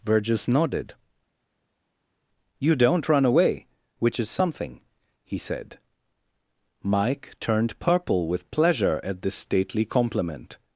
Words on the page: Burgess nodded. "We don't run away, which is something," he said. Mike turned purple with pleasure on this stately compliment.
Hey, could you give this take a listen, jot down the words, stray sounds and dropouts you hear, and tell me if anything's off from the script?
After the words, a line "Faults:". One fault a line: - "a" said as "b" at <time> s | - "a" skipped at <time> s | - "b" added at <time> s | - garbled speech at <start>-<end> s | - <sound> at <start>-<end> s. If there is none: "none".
Burgess nodded. "You don't run away, which is something," he said. Mike turned purple with pleasure at this stately compliment.
Faults:
- "We" said as "You" at 2.6 s
- "on" said as "at" at 9.0 s